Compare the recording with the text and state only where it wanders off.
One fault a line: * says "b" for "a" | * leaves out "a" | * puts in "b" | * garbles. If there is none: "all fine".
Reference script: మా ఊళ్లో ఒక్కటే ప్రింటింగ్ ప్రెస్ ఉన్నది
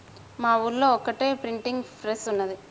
all fine